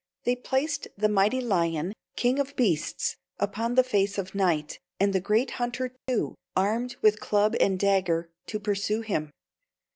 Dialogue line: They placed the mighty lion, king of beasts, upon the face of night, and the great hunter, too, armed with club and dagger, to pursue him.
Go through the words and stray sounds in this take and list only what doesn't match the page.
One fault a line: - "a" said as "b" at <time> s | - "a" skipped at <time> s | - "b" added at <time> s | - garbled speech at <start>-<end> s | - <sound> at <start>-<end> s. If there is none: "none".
- dropout at 6.0-6.1 s